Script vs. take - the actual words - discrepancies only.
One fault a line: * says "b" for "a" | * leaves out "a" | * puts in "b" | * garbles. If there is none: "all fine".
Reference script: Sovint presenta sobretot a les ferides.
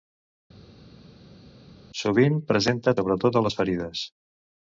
all fine